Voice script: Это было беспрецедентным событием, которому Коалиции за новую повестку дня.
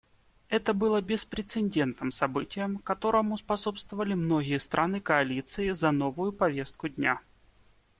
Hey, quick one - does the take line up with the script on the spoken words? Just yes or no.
no